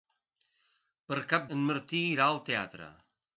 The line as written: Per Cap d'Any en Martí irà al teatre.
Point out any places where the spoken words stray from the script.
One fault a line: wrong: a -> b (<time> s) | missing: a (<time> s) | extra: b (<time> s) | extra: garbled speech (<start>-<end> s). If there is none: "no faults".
missing: d'Any (1.4 s)